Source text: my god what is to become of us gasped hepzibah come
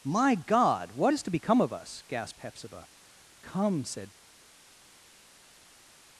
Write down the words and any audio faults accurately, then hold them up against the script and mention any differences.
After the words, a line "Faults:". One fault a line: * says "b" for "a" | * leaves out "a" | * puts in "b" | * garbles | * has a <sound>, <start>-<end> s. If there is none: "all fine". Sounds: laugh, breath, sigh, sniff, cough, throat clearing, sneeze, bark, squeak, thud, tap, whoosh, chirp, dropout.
my god what is to become of us gasped hepzibah come said
Faults:
* puts in "said"